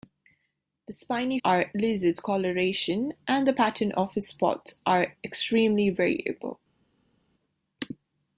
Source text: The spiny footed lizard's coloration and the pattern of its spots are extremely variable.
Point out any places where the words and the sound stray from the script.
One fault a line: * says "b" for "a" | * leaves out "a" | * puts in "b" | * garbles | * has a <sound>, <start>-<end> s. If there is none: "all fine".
* says "are" for "footed"